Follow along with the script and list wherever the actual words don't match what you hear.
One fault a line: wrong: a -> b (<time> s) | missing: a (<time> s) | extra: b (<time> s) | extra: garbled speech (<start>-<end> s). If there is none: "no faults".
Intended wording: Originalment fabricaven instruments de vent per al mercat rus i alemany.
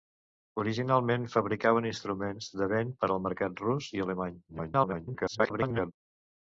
extra: garbled speech (4.5-5.9 s)